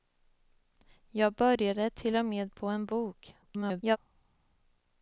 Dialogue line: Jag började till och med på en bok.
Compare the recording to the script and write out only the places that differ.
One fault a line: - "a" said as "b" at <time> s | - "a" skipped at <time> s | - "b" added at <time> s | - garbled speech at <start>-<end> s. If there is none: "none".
- garbled speech at 3.4-4.0 s